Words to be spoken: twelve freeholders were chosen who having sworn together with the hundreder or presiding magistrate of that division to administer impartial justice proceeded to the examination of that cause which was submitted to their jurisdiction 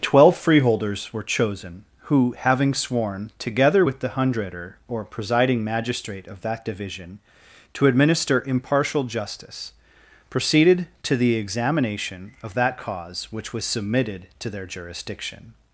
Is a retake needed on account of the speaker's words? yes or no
no